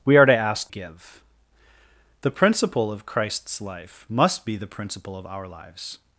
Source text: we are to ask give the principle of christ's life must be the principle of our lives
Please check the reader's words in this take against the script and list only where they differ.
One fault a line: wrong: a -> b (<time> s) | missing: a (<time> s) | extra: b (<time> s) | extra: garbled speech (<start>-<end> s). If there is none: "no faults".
no faults